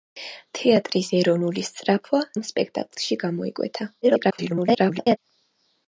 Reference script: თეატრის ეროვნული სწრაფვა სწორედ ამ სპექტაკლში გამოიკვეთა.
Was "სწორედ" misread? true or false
true